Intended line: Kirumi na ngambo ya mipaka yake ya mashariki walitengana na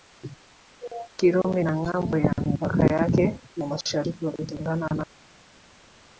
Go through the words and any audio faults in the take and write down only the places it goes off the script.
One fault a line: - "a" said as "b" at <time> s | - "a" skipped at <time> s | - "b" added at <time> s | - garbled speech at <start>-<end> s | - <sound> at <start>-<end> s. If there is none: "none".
none